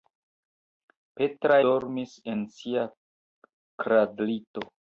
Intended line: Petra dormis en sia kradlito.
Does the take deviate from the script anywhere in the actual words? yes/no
no